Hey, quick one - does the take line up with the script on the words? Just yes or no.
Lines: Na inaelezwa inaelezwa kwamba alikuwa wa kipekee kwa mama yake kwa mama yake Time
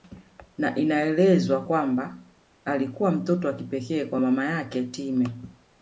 no